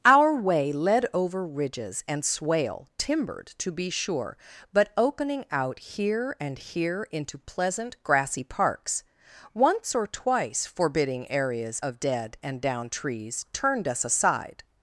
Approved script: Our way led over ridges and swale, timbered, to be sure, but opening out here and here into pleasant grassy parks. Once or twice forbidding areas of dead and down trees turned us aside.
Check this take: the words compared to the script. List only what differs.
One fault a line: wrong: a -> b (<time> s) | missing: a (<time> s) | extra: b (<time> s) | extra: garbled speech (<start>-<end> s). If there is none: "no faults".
no faults